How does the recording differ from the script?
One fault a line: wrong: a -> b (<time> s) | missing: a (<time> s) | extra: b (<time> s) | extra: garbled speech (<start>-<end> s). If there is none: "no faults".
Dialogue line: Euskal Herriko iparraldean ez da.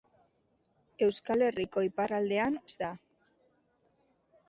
no faults